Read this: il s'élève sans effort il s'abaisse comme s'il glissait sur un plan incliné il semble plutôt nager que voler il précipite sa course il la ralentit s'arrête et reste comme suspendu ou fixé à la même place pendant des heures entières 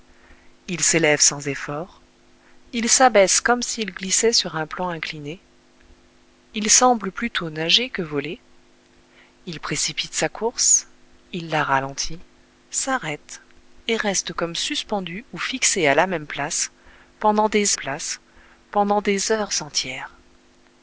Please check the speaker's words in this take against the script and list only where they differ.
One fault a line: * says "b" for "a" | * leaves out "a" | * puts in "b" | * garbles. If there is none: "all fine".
* puts in "place pendant des"